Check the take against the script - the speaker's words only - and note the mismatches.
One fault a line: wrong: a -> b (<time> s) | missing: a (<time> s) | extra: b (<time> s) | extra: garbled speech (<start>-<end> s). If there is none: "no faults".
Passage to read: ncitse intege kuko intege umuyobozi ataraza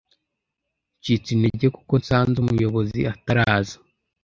wrong: intege -> nsanze (2.0 s)